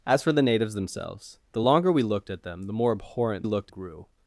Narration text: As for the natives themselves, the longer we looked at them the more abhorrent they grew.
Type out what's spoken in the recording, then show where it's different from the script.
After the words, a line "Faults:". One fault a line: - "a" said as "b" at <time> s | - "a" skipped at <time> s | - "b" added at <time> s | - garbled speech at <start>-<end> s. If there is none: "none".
As for the natives themselves, the longer we looked at them the more abhorrent looked grew.
Faults:
- "they" said as "looked" at 3.4 s